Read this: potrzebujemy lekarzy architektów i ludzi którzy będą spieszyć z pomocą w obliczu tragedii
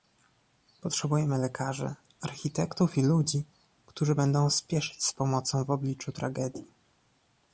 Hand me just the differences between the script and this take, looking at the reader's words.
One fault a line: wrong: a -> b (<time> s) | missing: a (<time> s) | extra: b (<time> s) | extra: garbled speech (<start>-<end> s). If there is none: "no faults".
no faults